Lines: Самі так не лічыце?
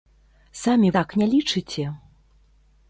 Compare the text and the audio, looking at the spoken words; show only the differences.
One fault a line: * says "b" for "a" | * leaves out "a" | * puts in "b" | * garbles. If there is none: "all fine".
all fine